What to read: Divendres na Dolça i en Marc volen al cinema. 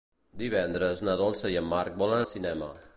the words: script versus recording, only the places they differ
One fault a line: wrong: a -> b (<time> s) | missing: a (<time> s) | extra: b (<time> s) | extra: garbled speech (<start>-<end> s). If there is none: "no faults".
no faults